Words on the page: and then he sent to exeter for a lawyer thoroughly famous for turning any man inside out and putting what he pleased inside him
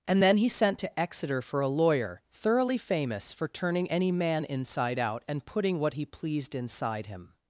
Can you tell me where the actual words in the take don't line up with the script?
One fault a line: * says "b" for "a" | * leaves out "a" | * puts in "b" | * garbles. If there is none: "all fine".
all fine